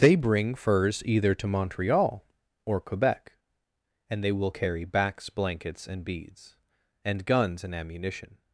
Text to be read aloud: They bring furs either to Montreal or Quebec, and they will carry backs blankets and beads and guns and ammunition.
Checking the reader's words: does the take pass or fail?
pass